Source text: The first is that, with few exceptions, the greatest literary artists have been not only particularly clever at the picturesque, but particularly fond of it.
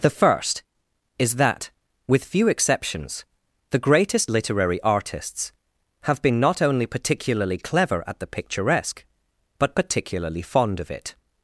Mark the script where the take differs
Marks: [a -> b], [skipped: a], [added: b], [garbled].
The first is that, with few exceptions, the greatest literary artists have been not only particularly clever at the picturesque, but particularly fond of it.